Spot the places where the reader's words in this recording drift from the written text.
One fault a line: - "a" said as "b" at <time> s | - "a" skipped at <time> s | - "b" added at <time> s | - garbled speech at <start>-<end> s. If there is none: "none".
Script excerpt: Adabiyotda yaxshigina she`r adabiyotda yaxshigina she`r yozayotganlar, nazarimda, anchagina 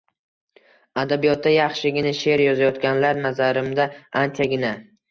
- "adabiyotda yaxshigina she`r" skipped at 2.5 s